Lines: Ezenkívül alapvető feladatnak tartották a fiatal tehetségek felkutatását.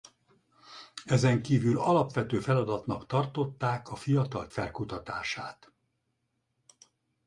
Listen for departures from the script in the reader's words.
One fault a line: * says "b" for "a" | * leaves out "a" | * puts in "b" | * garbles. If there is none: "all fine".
* leaves out "tehetségek"